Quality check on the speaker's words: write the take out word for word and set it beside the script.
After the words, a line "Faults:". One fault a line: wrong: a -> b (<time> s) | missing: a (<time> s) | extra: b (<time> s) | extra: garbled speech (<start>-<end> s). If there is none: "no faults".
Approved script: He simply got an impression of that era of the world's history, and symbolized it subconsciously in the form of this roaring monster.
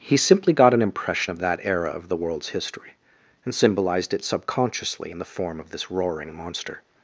He simply got an impression of that era of the world's history, and symbolized it subconsciously in the form of this roaring monster.
Faults:
no faults